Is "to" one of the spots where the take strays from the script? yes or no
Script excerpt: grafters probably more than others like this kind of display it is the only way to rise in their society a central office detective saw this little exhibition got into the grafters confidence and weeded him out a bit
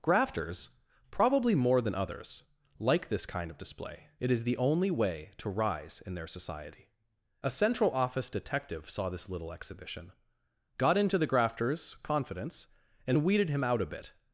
no